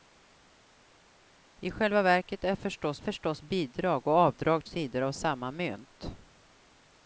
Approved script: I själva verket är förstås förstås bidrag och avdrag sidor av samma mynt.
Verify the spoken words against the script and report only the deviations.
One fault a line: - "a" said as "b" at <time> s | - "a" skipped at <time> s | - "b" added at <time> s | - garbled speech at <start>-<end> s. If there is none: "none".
none